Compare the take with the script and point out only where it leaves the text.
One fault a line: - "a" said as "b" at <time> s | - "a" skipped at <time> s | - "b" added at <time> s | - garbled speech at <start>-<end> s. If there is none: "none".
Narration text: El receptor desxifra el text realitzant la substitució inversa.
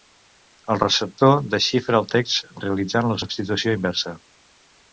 none